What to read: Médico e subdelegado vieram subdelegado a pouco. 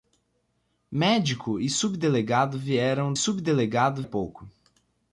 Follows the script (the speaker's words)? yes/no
yes